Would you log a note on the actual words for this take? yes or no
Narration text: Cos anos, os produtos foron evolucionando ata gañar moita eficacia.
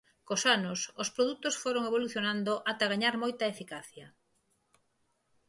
no